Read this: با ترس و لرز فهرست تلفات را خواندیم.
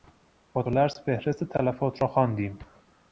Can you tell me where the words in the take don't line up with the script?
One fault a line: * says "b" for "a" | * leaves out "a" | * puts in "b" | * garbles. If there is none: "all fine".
* leaves out "ترس"